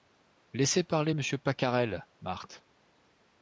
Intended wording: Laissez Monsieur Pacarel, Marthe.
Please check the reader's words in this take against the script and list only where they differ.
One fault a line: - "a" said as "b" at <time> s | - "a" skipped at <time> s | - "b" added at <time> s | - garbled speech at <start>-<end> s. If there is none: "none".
- "parler" added at 0.8 s